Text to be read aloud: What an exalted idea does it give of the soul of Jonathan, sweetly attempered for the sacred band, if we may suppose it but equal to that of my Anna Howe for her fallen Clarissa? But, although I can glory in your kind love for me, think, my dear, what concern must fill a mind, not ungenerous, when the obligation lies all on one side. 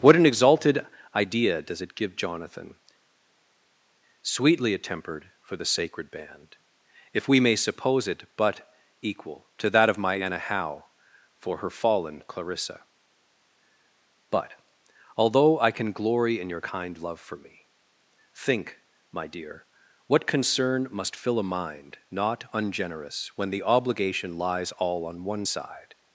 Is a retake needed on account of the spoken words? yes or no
yes